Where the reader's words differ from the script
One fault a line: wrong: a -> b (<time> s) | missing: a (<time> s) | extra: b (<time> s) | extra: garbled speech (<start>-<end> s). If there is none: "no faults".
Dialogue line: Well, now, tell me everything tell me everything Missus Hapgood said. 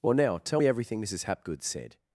missing: tell me everything (1.0 s)